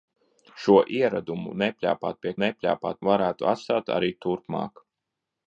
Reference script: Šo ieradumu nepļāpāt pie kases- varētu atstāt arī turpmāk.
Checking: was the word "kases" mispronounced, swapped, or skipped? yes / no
yes